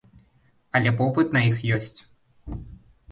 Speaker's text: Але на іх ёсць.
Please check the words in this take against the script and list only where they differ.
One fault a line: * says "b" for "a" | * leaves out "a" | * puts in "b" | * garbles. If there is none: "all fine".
* puts in "попыт"